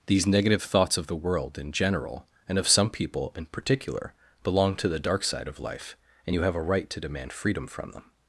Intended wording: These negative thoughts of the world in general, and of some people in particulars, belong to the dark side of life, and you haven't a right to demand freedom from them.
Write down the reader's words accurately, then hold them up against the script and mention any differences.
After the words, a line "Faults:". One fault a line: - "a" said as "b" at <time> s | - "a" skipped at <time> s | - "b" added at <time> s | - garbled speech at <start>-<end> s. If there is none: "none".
These negative thoughts of the world in general, and of some people in particular, belong to the dark side of life, and you have a right to demand freedom from them.
Faults:
- "particulars" said as "particular" at 3.5 s
- "haven't" said as "have" at 6.4 s